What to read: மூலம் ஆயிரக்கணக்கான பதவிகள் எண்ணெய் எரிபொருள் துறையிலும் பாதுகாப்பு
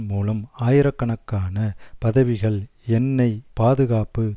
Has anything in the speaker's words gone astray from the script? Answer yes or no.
yes